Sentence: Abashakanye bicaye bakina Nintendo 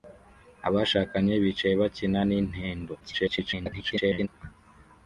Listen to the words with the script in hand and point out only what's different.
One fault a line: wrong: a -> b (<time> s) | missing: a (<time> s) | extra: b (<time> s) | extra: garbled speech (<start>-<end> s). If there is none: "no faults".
extra: garbled speech (3.0-4.3 s)